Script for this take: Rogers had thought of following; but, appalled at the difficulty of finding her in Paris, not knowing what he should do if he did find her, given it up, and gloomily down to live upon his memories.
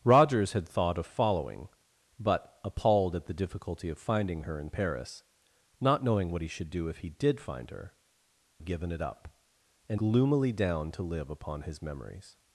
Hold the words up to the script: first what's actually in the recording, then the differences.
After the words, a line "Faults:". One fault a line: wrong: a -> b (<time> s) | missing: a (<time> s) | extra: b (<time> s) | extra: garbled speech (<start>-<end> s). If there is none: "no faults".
Rogers had thought of following; but, appalled at the difficulty of finding her in Paris, not knowing what he should do if he did find her, given it up, and gloomily down to live upon his memories.
Faults:
no faults